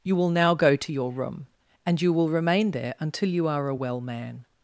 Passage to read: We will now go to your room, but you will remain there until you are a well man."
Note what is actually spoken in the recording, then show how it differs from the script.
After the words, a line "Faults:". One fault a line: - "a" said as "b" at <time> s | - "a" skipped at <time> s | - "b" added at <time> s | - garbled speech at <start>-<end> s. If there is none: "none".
You will now go to your room, and you will remain there until you are a well man."
Faults:
- "We" said as "You" at 0.0 s
- "but" said as "and" at 1.9 s